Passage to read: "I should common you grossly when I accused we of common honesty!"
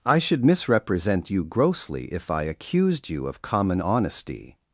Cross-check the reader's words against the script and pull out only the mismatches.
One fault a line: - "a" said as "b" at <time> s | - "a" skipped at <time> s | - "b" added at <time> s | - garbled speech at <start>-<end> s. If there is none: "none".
- "common" said as "misrepresent" at 0.4 s
- "when" said as "if" at 2.0 s
- "we" said as "you" at 3.1 s